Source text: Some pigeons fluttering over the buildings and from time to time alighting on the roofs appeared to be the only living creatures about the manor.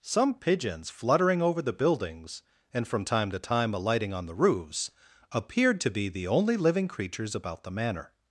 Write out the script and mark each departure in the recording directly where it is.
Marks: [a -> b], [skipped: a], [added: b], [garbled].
Some pigeons fluttering over the buildings and from time to time alighting on the roofs appeared to be the only living creatures about the manor.